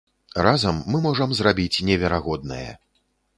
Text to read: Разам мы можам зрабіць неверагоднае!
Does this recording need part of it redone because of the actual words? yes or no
no